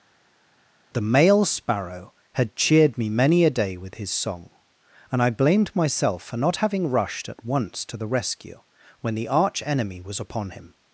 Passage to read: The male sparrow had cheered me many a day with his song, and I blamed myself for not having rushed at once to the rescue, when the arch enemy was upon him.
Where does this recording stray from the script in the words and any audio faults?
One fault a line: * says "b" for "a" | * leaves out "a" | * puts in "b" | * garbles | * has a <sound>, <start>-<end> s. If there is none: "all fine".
all fine